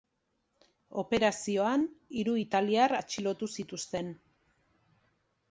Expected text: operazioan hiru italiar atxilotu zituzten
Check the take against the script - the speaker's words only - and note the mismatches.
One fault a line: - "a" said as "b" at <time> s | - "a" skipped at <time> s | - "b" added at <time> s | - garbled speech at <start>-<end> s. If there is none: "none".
none